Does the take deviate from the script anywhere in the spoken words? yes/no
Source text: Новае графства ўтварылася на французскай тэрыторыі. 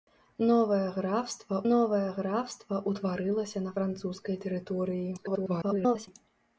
yes